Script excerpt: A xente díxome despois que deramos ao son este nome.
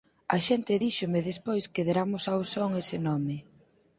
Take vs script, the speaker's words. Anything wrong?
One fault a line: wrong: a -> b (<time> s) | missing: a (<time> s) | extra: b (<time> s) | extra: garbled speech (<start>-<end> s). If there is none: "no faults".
wrong: este -> ese (2.8 s)